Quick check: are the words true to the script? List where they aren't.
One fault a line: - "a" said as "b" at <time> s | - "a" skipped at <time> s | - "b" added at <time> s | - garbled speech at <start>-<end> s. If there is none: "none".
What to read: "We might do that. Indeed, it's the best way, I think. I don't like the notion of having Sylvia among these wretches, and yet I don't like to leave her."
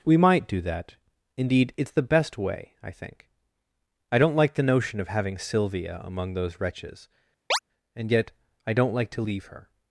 - "these" said as "those" at 6.3 s